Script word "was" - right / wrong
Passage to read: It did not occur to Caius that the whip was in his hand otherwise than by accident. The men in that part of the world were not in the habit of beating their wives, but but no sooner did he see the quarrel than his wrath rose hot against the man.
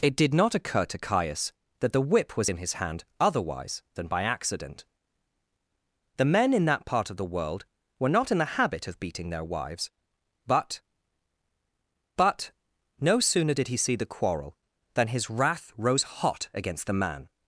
right